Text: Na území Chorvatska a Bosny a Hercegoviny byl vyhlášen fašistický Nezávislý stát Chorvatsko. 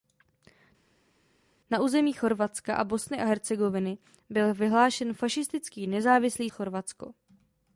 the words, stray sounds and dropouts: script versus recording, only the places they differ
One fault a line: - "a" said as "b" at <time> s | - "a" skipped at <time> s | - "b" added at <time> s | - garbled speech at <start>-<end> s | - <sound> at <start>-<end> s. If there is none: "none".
- "stát" skipped at 6.5 s